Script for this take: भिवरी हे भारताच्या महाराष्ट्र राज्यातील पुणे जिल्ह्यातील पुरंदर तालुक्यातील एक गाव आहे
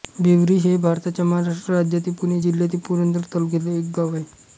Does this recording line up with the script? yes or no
yes